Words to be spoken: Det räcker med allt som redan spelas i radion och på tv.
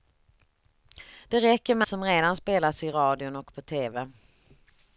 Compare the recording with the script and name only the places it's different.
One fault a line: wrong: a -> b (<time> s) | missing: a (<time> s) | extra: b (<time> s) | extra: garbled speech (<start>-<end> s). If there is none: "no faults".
missing: allt (1.9 s)